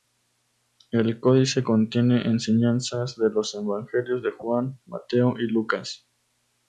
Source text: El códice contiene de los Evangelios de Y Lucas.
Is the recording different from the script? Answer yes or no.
yes